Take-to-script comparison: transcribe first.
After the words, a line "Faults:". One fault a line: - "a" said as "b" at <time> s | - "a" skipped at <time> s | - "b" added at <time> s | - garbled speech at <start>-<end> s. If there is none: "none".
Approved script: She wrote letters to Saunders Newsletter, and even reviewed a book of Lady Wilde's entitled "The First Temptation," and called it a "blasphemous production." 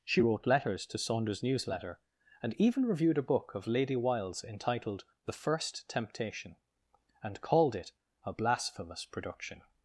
She wrote letters to Saunders Newsletter, and even reviewed a book of Lady Wilde's entitled "The First Temptation," and called it a "blasphemous production."
Faults:
none